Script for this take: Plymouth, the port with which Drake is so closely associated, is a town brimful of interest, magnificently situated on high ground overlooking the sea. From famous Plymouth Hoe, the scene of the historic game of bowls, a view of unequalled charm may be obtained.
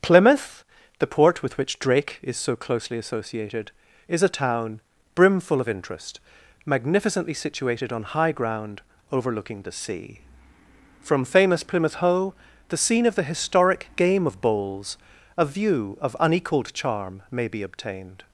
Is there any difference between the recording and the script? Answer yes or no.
no